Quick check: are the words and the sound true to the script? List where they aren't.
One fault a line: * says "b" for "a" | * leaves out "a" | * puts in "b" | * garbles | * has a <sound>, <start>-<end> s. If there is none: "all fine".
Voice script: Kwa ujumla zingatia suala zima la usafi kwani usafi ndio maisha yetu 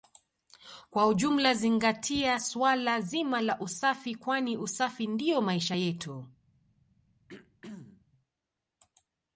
* has a throat clearing, 7.3-8.1 s